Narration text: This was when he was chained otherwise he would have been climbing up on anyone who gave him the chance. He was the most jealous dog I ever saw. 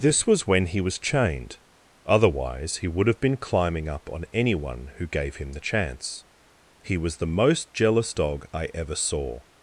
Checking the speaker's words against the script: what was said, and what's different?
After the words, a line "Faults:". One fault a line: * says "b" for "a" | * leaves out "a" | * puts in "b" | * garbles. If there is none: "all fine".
This was when he was chained otherwise he would have been climbing up on anyone who gave him the chance. He was the most jealous dog I ever saw.
Faults:
all fine